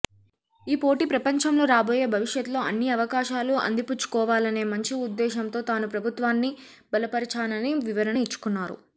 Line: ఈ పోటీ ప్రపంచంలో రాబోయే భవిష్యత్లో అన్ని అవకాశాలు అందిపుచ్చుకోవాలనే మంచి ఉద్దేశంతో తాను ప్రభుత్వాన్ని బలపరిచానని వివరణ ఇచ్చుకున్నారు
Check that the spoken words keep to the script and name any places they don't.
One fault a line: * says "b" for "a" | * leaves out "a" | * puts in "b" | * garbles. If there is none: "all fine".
all fine